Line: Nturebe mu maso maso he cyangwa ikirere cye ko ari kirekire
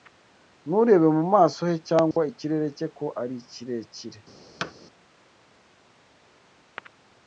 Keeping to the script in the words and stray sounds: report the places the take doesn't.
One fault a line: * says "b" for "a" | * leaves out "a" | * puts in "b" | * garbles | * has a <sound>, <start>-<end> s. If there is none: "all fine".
* leaves out "maso"
* has a dropout, 2.1-2.2 s
* has a thud, 4.6-4.7 s